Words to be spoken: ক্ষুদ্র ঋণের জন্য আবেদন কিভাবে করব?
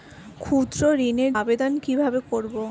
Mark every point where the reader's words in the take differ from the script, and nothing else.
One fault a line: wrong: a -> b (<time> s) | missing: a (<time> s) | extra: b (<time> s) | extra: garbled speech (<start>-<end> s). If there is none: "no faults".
missing: জন্য (1.3 s)